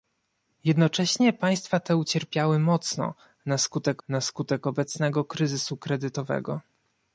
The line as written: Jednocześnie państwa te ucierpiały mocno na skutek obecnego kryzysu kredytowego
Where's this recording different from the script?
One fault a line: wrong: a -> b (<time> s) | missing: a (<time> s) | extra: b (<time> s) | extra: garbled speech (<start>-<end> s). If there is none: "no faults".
extra: na skutek (4.1 s)